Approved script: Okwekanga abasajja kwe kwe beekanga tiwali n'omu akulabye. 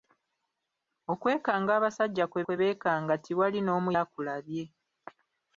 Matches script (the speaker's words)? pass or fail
pass